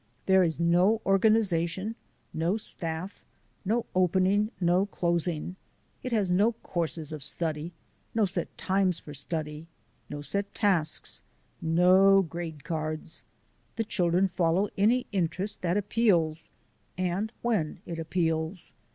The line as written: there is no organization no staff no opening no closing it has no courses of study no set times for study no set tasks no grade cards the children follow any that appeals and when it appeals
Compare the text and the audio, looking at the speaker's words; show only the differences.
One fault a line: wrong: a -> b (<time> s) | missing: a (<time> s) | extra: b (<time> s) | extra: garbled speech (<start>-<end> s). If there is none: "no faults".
extra: interest (15.1 s)